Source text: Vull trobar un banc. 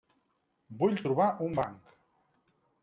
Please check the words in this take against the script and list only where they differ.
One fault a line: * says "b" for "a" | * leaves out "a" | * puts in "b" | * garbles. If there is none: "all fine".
all fine